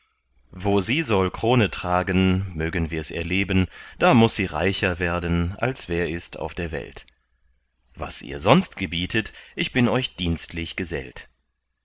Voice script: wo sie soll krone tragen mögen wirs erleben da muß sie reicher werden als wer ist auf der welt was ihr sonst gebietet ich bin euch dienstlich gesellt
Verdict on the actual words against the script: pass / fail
pass